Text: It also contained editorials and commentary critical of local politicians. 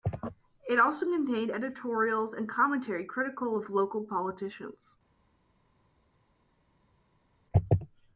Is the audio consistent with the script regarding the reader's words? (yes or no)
yes